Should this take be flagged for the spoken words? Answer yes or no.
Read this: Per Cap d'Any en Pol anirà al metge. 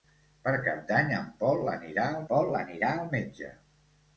yes